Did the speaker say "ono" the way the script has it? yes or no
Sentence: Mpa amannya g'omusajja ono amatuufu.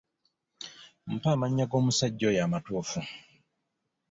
no